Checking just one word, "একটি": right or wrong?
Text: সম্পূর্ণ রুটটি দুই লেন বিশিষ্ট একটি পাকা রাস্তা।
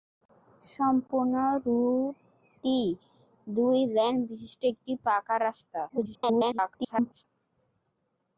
right